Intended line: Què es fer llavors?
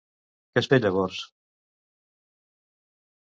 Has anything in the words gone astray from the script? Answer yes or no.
no